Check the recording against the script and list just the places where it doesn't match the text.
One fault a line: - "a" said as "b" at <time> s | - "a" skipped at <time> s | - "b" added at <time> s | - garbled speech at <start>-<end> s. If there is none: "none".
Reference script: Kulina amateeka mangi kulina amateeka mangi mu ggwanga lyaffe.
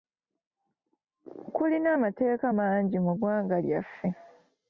- "kulina amateeka mangi" skipped at 3.0 s